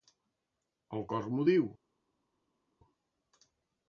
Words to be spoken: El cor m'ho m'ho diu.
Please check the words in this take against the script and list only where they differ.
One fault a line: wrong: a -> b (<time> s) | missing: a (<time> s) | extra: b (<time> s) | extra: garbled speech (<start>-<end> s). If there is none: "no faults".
missing: m'ho (1.5 s)